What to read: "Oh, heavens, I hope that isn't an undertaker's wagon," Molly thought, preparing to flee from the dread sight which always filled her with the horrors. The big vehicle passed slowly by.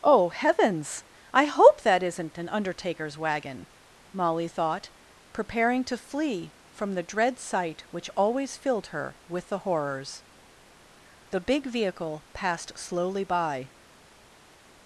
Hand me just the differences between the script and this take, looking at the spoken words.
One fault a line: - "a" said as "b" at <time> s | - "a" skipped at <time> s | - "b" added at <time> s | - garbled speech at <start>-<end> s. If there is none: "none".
none